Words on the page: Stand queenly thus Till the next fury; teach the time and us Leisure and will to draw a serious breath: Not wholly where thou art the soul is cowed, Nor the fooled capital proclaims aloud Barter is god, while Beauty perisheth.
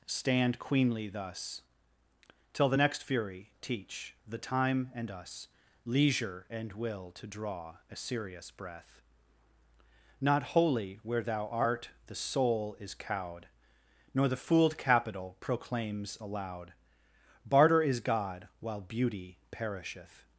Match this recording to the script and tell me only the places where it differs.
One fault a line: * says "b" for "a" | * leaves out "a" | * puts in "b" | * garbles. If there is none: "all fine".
all fine